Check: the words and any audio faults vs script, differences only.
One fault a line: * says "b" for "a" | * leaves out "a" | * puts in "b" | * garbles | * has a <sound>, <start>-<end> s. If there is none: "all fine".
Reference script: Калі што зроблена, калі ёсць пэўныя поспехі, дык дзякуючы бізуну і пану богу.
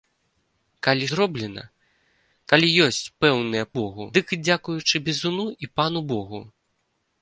* leaves out "што"
* says "богу" for "поспехі"